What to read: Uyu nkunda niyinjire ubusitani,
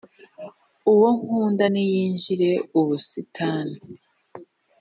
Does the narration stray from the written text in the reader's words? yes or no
yes